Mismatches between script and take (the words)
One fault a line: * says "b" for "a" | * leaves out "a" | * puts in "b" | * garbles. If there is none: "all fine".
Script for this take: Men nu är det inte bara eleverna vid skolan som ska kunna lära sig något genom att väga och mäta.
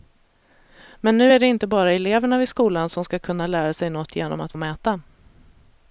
* leaves out "väga"